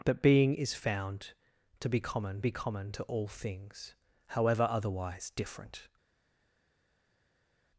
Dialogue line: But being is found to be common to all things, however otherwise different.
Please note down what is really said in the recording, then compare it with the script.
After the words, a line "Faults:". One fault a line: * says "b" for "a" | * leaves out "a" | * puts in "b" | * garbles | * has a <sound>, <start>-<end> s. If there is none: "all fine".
But being is found to be common be common to all things, however otherwise different.
Faults:
* puts in "be common"